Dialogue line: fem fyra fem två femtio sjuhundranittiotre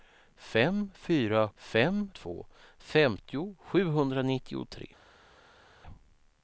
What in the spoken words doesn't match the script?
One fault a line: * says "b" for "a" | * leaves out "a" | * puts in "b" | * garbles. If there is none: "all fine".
all fine